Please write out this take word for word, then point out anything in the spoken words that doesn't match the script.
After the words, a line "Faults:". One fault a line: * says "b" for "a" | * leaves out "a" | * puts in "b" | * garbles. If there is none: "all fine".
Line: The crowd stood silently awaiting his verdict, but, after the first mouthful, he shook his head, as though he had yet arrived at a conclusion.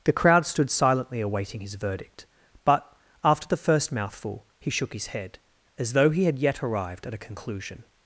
The crowd stood silently awaiting his verdict, but, after the first mouthful, he shook his head, as though he had yet arrived at a conclusion.
Faults:
all fine